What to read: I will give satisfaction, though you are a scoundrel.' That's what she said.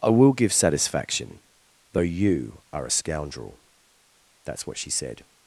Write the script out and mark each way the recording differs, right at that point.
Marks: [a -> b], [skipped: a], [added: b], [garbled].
I will give satisfaction, though you are a scoundrel.' That's what she said.